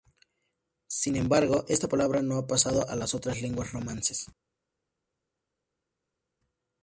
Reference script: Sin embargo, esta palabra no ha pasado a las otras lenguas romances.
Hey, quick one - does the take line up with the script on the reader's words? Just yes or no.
yes